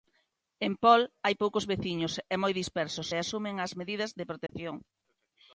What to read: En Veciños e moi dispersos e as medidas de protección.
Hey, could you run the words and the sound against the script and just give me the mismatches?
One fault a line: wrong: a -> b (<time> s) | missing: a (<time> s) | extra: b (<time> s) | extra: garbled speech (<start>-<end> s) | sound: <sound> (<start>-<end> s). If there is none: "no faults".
extra: Pol hai poucos (0.8 s)
extra: asumen (3.2 s)
sound: dropout (4.5-4.5 s)